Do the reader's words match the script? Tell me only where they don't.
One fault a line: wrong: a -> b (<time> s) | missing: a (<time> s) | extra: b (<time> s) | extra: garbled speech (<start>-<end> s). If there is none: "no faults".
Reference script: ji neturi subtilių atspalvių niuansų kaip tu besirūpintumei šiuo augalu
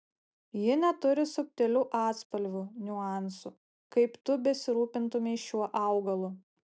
no faults